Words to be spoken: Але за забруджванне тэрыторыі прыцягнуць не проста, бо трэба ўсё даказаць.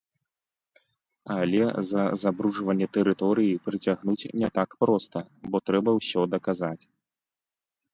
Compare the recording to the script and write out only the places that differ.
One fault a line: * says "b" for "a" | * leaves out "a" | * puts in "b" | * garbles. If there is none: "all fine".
* puts in "так"